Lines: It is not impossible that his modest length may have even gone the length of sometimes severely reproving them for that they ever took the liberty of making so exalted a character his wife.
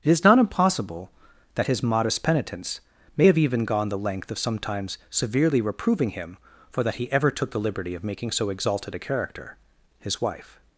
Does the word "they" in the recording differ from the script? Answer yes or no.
yes